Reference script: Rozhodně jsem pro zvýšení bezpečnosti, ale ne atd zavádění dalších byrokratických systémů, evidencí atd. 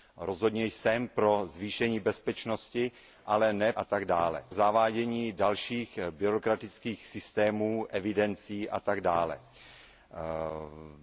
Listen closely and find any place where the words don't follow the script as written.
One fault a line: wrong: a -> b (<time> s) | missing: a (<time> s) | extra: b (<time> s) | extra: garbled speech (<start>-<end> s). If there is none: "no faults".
no faults